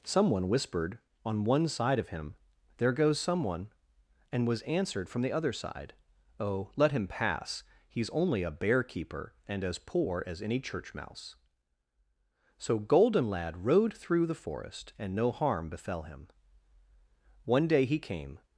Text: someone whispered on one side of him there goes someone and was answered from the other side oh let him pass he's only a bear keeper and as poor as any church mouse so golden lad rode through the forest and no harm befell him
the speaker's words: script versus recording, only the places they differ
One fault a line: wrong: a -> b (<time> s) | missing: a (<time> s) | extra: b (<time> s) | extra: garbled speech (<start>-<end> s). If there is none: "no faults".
extra: one day he came (17.4 s)